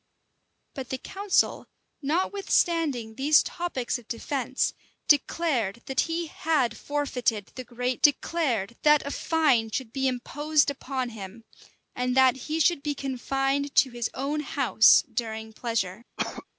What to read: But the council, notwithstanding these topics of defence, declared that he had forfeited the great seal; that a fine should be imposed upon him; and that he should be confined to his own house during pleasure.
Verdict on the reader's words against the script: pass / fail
fail